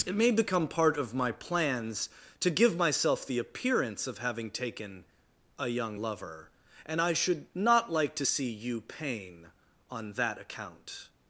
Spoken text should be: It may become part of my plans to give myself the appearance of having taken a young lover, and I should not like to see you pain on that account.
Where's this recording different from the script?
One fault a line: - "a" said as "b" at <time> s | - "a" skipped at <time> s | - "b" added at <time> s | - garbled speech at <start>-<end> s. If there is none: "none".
none